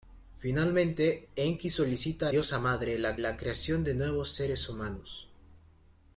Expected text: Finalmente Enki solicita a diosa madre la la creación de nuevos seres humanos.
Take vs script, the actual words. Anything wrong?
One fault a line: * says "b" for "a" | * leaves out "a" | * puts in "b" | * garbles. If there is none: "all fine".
all fine